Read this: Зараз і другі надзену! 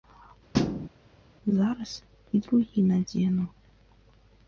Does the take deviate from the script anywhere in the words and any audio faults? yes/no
yes